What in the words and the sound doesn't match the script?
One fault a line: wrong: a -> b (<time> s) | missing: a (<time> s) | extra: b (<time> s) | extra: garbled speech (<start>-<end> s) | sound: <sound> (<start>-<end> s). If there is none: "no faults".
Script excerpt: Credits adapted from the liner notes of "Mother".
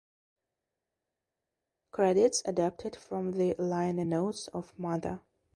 no faults